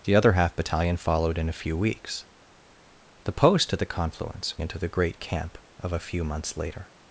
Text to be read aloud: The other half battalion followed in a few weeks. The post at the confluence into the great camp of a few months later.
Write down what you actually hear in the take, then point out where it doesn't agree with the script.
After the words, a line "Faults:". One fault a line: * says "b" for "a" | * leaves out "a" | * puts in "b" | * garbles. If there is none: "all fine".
The other half battalion followed in a few weeks. The post at the confluence into the great camp of a few months later.
Faults:
all fine